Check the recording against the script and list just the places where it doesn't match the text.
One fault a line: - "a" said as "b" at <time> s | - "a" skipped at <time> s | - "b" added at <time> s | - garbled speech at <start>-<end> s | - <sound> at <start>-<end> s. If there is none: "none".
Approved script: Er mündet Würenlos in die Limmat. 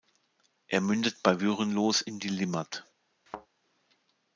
- "bei" added at 1.2 s
- thud at 3.3-3.5 s